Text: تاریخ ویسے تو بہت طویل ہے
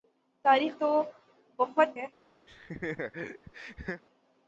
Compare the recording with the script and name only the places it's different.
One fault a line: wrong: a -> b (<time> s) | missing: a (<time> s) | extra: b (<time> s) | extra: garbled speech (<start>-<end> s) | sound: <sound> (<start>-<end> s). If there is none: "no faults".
missing: ویسے (0.7 s)
missing: طویل (2.0 s)
sound: laugh (2.5-4.0 s)